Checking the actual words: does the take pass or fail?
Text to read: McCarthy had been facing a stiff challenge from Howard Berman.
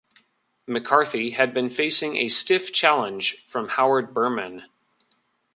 pass